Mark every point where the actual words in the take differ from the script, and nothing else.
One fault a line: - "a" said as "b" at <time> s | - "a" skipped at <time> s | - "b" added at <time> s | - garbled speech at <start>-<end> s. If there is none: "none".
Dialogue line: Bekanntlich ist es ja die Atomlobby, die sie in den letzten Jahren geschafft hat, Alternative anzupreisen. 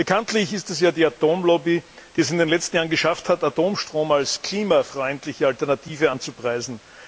- "sie" said as "es" at 2.2 s
- "Atomstrom als klimafreundliche" added at 3.4 s